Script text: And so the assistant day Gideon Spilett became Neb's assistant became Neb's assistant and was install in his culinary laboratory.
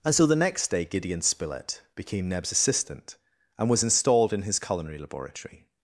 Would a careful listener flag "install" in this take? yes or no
yes